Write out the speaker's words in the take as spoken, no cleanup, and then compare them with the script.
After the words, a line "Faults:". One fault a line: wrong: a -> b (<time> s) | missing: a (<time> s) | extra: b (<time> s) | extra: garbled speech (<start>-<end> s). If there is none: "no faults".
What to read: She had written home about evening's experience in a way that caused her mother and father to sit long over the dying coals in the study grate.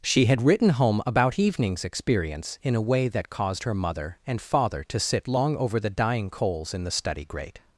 She had written home about evening's experience in a way that caused her mother and father to sit long over the dying coals in the study grate.
Faults:
no faults